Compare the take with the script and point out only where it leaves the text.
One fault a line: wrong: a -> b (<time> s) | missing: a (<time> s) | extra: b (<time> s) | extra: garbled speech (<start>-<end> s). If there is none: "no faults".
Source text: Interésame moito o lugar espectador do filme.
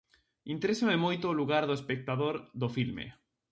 extra: do (1.6 s)